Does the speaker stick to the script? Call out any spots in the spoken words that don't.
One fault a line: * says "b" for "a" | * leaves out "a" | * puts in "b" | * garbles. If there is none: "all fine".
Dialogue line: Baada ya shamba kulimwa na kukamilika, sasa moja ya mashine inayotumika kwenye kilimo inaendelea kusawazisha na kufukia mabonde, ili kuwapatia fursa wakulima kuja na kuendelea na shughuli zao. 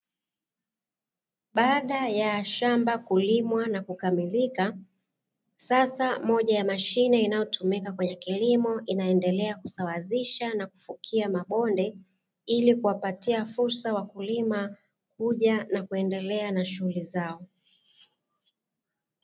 all fine